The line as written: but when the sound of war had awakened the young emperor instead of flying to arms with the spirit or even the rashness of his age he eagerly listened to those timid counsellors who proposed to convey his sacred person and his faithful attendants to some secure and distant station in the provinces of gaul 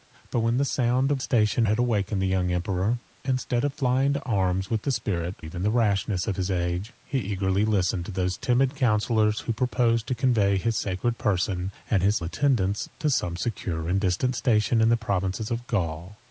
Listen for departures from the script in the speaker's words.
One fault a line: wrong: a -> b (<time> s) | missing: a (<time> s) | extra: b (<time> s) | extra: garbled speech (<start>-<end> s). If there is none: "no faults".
wrong: war -> station (1.2 s)
missing: or (5.4 s)
missing: faithful (12.2 s)